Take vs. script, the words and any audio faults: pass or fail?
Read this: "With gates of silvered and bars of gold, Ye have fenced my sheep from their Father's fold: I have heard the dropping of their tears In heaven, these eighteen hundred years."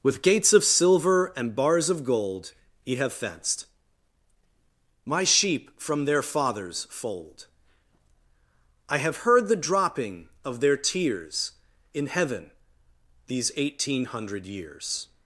fail